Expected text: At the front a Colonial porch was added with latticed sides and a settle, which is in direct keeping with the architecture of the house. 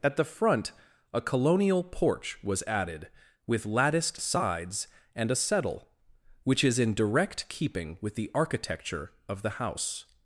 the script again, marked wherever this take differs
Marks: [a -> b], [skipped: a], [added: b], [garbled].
At the front a Colonial porch was added with latticed sides and a settle, which is in direct keeping with the architecture of the house.